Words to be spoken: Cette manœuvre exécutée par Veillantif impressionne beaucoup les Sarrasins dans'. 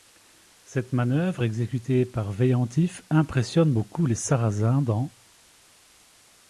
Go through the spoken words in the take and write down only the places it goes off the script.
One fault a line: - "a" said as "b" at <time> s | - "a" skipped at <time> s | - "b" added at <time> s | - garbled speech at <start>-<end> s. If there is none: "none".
none